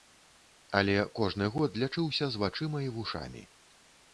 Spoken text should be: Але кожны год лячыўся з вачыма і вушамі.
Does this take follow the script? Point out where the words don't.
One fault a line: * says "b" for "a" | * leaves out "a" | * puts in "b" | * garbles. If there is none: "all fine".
all fine